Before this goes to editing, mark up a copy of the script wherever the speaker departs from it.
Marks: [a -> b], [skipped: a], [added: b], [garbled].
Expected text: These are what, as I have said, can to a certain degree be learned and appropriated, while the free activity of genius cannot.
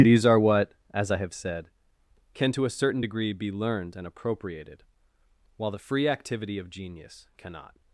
These are what, as I have said, can to a certain degree be learned and appropriated, while the free activity of genius cannot.